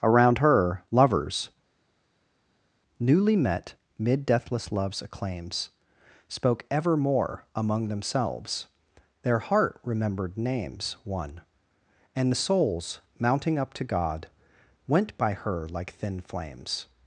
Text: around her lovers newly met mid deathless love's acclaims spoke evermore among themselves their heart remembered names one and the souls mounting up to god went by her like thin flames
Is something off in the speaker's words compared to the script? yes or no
no